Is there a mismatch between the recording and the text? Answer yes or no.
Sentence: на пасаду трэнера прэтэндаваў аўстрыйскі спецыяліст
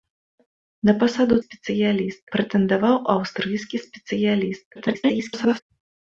yes